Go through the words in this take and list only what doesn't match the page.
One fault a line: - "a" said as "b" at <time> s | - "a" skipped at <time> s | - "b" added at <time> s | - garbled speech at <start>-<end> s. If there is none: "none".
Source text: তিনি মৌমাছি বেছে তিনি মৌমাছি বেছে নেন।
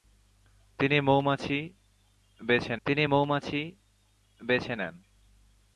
none